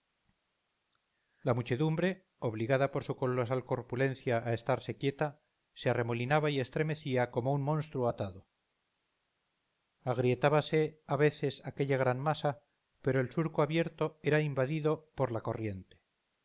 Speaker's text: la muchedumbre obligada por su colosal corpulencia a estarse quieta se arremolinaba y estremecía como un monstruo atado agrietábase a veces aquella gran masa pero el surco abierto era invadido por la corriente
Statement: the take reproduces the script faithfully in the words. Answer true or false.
true